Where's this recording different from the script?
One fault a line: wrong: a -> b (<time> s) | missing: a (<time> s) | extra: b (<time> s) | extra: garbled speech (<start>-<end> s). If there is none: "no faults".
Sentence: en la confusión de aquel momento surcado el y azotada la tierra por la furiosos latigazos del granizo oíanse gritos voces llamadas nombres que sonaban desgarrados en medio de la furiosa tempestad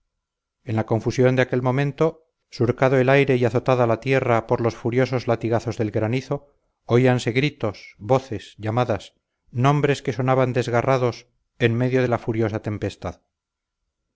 extra: aire (3.1 s)
wrong: la -> los (4.6 s)